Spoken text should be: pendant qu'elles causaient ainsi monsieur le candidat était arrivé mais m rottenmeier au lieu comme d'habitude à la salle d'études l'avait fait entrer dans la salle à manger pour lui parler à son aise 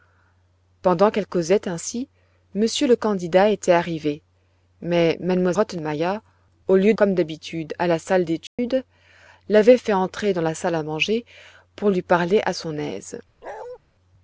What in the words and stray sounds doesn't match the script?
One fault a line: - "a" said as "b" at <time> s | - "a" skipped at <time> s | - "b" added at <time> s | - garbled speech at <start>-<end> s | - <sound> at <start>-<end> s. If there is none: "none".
- dropout at 8.5-8.6 s
- bark at 13.4-13.8 s